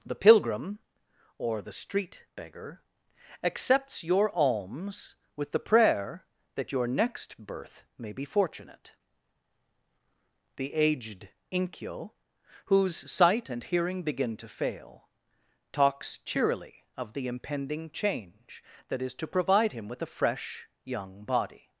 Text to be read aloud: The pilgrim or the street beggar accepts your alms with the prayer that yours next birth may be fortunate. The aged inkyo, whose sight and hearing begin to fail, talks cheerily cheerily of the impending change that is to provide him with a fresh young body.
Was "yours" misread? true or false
true